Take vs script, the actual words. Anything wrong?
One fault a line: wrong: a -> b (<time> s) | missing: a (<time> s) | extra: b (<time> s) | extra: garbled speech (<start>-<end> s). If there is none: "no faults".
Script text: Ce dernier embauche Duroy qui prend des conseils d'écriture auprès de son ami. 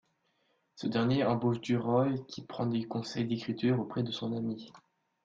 no faults